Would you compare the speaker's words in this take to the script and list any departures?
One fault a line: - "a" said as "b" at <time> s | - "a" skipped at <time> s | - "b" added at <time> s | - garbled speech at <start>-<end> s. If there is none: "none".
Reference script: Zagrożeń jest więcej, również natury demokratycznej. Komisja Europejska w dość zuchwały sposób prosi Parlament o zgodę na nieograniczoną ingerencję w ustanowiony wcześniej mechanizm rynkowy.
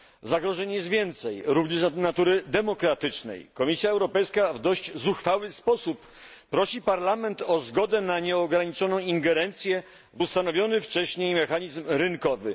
none